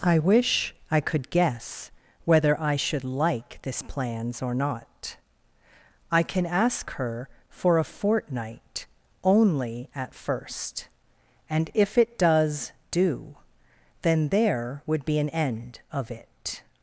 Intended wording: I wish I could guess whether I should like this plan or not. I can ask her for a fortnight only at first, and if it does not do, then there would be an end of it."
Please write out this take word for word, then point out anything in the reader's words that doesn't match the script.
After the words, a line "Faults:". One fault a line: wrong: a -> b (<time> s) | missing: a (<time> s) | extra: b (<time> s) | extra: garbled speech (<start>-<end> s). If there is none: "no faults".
I wish I could guess whether I should like this plans or not. I can ask her for a fortnight only at first, and if it does do, then there would be an end of it."
Faults:
wrong: plan -> plans (3.8 s)
missing: not (12.7 s)